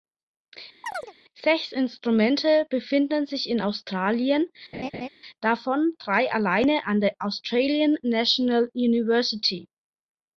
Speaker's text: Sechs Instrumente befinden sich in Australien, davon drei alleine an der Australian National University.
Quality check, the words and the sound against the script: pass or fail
fail